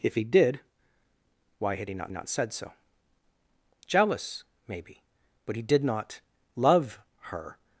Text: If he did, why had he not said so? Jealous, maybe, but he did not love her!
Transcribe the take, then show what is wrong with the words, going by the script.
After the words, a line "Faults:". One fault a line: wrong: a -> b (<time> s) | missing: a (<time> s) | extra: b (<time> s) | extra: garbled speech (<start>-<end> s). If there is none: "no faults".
If he did, why had he not not said so? Jealous, maybe, but he did not love her!
Faults:
extra: not (2.1 s)